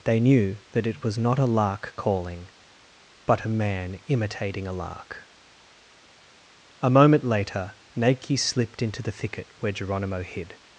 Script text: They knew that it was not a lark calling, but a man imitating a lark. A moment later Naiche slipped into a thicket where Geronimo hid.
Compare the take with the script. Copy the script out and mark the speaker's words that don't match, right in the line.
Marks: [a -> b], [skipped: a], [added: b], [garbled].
They knew that it was not a lark calling, but a man imitating a lark. A moment later Naiche slipped into [a -> the] thicket where Geronimo hid.